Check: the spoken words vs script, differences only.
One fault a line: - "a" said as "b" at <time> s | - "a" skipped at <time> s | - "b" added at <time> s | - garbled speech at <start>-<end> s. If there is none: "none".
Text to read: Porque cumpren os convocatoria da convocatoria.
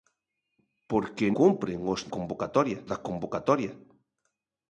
none